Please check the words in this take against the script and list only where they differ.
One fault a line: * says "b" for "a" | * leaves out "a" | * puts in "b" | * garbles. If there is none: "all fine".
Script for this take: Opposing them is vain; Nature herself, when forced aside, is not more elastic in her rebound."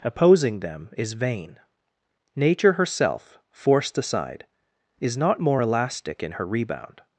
* leaves out "when"